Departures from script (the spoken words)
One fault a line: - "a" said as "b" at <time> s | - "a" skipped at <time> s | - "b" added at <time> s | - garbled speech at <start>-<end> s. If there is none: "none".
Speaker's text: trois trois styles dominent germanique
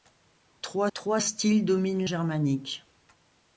none